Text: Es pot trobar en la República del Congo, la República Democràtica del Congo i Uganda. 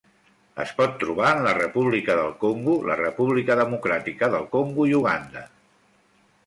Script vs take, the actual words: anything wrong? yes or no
no